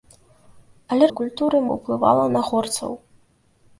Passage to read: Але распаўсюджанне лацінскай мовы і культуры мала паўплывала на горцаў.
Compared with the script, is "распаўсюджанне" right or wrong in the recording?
wrong